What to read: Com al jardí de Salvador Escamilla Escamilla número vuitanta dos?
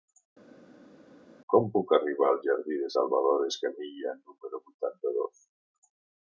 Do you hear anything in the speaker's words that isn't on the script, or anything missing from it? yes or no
yes